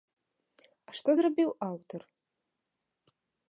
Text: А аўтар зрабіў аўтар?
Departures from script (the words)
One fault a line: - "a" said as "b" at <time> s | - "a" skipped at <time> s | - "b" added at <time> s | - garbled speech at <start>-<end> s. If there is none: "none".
- "аўтар" said as "што" at 1.0 s